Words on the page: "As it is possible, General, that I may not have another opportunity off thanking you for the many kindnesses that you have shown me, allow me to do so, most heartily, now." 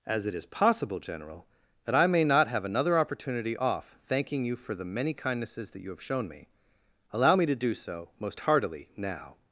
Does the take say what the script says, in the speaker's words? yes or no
yes